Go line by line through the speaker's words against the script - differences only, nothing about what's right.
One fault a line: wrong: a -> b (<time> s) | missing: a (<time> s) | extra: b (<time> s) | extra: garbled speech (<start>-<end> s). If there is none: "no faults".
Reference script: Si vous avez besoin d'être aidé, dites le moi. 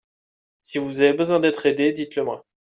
no faults